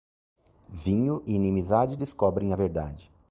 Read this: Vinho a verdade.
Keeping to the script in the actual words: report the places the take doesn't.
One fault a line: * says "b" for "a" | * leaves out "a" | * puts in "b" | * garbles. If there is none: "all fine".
* puts in "e inimizade descobrem"